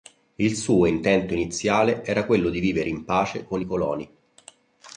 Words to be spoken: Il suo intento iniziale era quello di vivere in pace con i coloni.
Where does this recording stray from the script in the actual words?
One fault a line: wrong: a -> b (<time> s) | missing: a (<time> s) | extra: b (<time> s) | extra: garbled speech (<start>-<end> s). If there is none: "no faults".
no faults